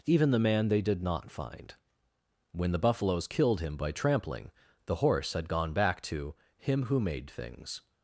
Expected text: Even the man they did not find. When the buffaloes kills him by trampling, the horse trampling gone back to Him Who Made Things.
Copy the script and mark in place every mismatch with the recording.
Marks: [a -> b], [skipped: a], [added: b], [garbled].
Even the man they did not find. When the buffaloes [kills -> killed] him by trampling, the horse [trampling -> had] gone back to Him Who Made Things.